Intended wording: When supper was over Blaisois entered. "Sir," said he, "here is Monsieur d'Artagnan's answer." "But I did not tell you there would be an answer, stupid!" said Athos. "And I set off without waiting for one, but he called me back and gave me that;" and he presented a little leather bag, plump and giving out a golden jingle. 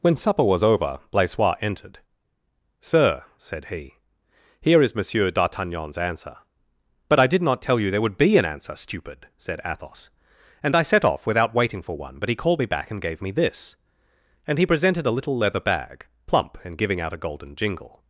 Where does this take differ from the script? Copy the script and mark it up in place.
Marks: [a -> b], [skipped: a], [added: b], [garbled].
When supper was over Blaisois entered. "Sir," said he, "here is Monsieur d'Artagnan's answer." "But I did not tell you there would be an answer, stupid!" said Athos. "And I set off without waiting for one, but he called me back and gave me [that;" -> this] and he presented a little leather bag, plump and giving out a golden jingle.